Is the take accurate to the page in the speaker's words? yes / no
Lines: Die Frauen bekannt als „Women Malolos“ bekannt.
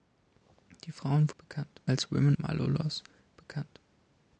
yes